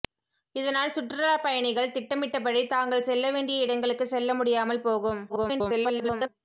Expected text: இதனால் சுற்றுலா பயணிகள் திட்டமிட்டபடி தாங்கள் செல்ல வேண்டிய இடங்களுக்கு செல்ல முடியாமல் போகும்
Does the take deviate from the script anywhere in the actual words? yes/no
yes